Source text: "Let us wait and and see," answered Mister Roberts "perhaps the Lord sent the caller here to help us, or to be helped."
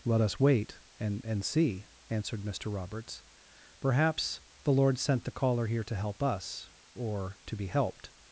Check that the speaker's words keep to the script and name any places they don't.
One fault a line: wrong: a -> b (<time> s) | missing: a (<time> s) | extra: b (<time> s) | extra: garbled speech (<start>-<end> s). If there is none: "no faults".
no faults